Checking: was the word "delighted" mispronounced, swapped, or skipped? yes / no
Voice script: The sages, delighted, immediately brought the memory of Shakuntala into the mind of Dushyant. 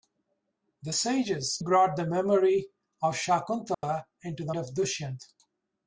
yes